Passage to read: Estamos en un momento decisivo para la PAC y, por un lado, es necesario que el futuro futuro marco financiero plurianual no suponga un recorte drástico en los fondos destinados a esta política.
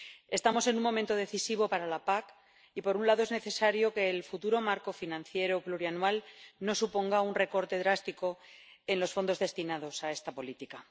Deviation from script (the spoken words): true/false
true